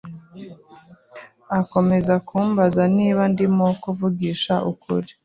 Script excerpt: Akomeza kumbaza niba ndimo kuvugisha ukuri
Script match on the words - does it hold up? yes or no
yes